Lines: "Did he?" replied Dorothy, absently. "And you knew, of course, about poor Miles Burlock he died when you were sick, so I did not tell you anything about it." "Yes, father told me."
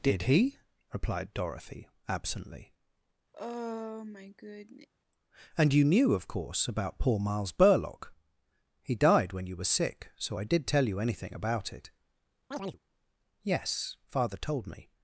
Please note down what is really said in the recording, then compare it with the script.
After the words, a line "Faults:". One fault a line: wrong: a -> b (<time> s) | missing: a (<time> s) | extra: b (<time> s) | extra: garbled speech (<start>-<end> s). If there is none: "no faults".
"Did he?" replied Dorothy, absently. "And you knew, of course, about poor Miles Burlock he died when you were sick, so I did tell you anything about it." "Yes, father told me."
Faults:
missing: not (10.7 s)